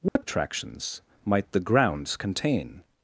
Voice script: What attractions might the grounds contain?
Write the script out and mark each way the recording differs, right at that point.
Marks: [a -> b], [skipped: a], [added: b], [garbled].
What attractions might the grounds contain?